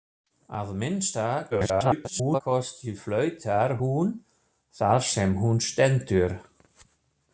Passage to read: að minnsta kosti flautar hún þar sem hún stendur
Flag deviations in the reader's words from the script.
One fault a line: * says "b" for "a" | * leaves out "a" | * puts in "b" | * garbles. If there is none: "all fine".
* garbles